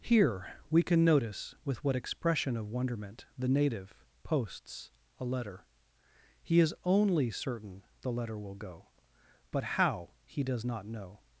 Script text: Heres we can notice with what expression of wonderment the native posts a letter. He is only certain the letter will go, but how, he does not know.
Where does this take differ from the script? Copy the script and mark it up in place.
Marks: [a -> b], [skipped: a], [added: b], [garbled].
[Heres -> Here] we can notice with what expression of wonderment the native posts a letter. He is only certain the letter will go, but how, he does not know.